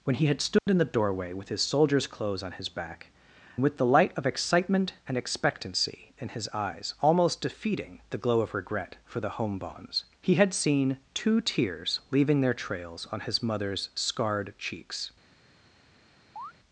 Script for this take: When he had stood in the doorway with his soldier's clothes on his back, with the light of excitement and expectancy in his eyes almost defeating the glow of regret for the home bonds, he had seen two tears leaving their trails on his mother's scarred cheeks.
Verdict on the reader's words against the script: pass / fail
pass